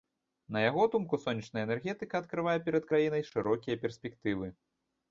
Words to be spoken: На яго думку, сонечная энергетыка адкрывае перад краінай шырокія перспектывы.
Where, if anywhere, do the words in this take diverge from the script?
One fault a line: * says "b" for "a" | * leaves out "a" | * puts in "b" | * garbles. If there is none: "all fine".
all fine